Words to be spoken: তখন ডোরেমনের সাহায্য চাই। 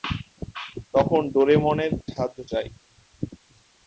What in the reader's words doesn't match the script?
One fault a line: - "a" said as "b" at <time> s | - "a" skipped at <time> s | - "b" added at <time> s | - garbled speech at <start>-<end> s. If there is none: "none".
none